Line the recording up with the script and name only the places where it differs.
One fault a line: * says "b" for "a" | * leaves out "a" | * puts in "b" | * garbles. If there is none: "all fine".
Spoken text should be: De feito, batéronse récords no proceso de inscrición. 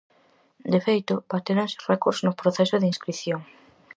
all fine